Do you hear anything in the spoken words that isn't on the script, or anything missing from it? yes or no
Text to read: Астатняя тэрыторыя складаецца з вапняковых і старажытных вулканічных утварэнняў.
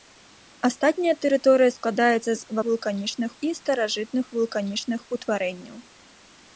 yes